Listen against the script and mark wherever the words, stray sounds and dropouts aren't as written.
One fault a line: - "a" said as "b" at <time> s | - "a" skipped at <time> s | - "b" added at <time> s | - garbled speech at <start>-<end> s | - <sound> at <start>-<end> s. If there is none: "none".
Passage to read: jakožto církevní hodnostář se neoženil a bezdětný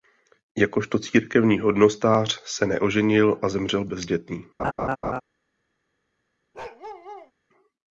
- "zemřel" added at 3.5 s
- laugh at 4.6-5.2 s
- bark at 6.5-7.3 s